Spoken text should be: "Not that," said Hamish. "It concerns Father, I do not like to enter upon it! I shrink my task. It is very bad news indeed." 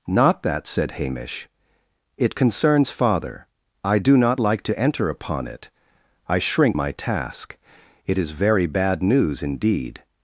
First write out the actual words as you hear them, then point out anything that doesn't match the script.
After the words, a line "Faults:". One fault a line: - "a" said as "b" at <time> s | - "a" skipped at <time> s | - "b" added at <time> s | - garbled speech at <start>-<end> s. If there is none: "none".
"Not that," said Hamish. "It concerns Father, I do not like to enter upon it! I shrink my task. It is very bad news indeed."
Faults:
none